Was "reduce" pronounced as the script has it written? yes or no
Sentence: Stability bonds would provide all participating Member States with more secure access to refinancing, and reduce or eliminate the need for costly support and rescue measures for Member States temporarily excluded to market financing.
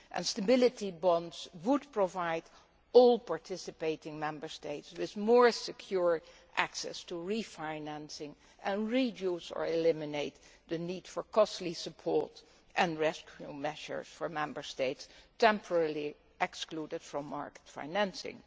yes